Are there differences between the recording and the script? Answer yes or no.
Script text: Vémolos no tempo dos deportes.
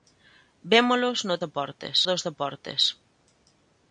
yes